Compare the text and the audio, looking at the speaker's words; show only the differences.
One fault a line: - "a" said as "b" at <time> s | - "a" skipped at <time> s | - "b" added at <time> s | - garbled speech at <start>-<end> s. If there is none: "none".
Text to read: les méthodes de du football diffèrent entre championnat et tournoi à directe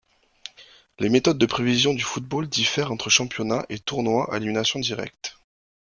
- "prévision" added at 1.4 s
- "élimination" added at 4.4 s